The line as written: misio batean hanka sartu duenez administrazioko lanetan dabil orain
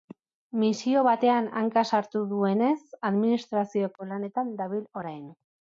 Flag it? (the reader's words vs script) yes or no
no